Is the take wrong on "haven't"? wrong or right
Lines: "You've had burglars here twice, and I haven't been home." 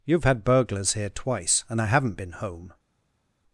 right